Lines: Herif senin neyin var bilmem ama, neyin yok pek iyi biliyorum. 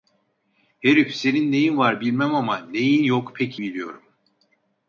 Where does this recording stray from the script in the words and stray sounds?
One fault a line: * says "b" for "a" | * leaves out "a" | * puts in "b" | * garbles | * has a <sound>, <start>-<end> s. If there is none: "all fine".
* leaves out "iyi"